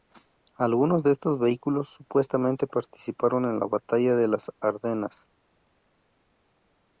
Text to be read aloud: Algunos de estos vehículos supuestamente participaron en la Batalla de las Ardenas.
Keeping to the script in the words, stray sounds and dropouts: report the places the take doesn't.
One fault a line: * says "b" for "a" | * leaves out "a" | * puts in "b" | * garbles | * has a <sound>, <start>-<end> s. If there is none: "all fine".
all fine